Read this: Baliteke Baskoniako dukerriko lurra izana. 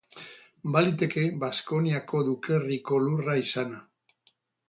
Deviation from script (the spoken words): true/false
false